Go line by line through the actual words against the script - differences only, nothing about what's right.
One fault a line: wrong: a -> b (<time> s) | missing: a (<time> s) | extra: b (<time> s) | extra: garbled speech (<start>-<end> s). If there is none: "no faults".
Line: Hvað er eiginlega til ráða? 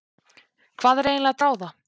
missing: til (1.4 s)